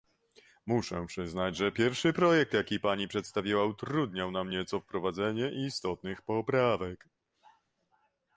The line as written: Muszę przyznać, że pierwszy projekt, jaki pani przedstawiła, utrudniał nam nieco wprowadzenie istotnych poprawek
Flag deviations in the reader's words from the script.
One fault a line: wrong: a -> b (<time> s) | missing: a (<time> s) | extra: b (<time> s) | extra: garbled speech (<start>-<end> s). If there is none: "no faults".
no faults